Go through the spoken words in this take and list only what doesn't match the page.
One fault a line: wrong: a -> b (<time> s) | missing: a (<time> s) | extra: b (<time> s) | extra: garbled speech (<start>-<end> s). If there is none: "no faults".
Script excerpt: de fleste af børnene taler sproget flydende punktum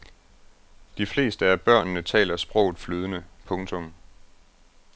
no faults